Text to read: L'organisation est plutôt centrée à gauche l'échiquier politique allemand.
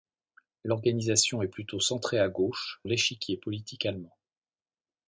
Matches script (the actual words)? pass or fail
pass